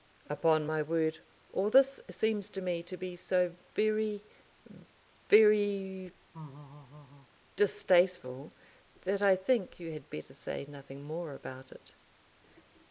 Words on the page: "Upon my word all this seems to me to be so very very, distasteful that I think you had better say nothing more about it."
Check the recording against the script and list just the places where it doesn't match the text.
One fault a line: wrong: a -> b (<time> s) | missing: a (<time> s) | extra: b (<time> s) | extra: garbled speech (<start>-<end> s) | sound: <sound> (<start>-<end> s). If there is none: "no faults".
sound: laugh (6.3-7.3 s)